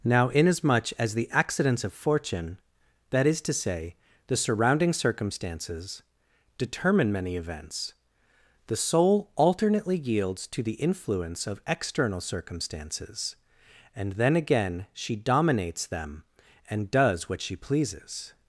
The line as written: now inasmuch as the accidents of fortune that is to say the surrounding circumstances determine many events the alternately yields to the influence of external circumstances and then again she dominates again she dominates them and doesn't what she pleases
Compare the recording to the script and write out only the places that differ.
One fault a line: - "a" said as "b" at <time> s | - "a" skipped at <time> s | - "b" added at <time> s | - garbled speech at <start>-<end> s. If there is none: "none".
- "soul" added at 8.8 s
- "again she dominates" skipped at 15.9 s
- "doesn't" said as "does" at 16.9 s